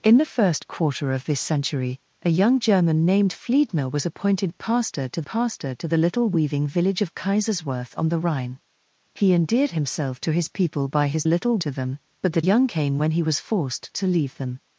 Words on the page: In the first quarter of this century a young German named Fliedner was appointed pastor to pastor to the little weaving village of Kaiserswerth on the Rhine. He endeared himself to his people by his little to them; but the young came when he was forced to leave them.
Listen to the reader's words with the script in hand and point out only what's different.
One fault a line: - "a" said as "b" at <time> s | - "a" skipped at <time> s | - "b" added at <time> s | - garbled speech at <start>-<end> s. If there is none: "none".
none